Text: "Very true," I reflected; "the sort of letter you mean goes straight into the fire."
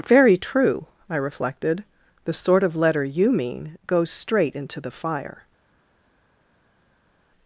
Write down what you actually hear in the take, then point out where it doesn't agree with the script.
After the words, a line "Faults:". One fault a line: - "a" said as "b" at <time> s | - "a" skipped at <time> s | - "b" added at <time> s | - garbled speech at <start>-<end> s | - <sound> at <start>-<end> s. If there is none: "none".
"Very true," I reflected; "the sort of letter you mean goes straight into the fire."
Faults:
none